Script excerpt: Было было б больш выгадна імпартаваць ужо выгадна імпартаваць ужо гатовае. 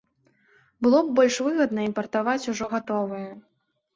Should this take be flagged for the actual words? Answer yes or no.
yes